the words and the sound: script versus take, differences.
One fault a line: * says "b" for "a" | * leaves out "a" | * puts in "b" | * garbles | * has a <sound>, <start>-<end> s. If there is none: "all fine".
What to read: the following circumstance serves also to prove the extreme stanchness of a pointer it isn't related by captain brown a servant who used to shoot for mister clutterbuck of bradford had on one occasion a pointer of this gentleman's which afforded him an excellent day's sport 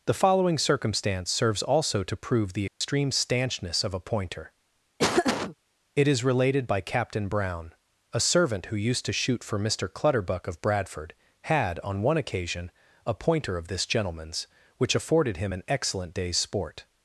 * has a dropout, 2.7-2.8 s
* has a laugh, 5.0-5.6 s
* says "is" for "isn't"